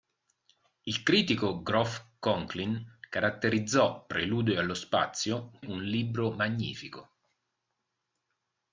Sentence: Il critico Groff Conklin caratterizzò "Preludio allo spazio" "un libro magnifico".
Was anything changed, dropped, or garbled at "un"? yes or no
no